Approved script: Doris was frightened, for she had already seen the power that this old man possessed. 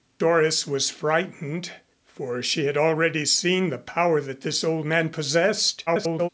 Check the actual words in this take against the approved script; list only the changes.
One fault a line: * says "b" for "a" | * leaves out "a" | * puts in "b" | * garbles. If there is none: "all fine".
* garbles